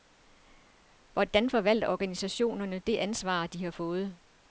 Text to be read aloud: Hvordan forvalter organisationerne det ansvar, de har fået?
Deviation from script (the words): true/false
false